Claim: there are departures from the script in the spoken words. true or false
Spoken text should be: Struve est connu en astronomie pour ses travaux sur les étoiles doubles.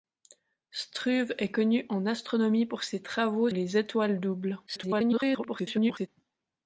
true